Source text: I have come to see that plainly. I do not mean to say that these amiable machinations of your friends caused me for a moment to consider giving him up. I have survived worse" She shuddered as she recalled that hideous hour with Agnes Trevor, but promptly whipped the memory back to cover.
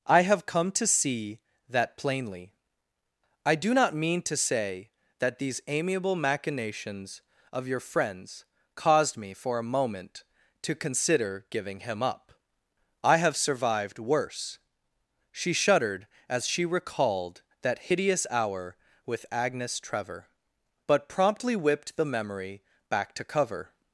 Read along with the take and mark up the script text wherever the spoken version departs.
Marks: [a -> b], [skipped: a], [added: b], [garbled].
I have come to see that plainly. I do not mean to say that these amiable machinations of your friends caused me for a moment to consider giving him up. I have survived worse" She shuddered as she recalled that hideous hour with Agnes Trevor, but promptly whipped the memory back to cover.